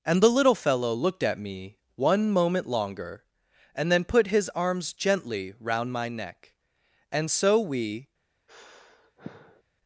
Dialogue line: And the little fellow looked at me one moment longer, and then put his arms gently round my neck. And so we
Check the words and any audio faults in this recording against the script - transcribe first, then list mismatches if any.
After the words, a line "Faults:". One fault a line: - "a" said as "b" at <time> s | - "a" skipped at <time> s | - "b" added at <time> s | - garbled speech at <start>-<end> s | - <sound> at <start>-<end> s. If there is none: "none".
And the little fellow looked at me one moment longer, and then put his arms gently round my neck. And so we
Faults:
- sigh at 8.5-9.6 s